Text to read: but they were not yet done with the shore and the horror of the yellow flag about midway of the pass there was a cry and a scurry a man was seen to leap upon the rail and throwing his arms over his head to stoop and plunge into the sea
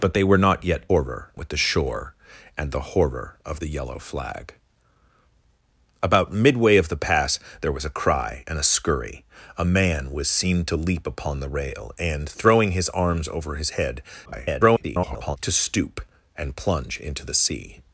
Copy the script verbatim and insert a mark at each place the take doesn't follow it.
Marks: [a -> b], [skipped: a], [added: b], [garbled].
but they were not yet [done -> horror] with the shore and the horror of the yellow flag about midway of the pass there was a cry and a scurry a man was seen to leap upon the rail and throwing his arms over his head [garbled] to stoop and plunge into the sea